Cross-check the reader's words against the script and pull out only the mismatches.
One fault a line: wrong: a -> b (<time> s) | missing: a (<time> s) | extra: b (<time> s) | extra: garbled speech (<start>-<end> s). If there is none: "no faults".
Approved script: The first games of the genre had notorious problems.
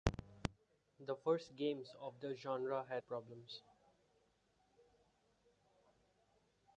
missing: notorious (3.0 s)